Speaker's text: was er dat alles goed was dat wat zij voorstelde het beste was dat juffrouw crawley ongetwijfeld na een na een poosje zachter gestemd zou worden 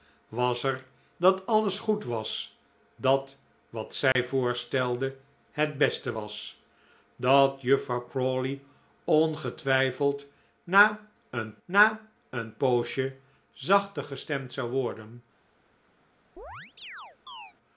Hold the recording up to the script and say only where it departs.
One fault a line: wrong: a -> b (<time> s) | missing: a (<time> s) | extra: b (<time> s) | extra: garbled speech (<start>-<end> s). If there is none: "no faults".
no faults